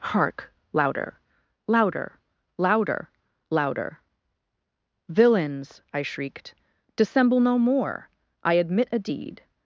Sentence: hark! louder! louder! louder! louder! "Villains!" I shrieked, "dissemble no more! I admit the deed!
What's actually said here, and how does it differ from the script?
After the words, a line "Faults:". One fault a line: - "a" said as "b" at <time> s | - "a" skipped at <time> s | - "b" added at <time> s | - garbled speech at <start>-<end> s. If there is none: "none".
hark! louder! louder! louder! louder! "Villains!" I shrieked, "dissemble no more! I admit a deed!
Faults:
- "the" said as "a" at 8.9 s